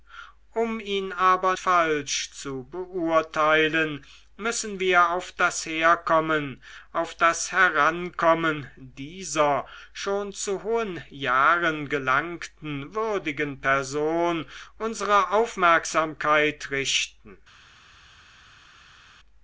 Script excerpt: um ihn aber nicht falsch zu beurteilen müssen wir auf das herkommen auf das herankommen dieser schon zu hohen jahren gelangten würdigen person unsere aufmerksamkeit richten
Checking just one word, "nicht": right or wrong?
wrong